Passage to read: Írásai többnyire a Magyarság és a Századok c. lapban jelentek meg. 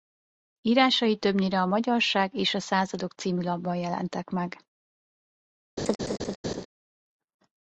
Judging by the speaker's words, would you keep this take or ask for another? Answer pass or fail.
pass